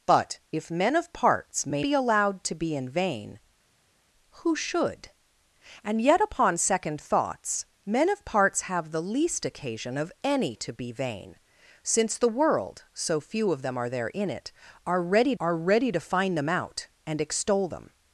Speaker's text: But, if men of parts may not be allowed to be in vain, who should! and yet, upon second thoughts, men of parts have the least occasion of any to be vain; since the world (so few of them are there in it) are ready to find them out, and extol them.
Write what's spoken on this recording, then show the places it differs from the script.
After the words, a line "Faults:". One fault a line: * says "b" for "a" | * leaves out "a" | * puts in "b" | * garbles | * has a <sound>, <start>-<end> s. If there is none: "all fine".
But, if men of parts may be allowed to be in vain, who should! and yet, upon second thoughts, men of parts have the least occasion of any to be vain; since the world (so few of them are there in it) are ready are ready to find them out, and extol them.
Faults:
* leaves out "not"
* puts in "are ready"